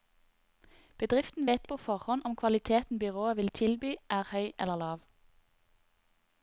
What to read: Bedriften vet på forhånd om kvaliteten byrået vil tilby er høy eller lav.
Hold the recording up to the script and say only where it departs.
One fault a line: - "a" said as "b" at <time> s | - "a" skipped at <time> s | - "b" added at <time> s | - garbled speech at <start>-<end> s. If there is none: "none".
none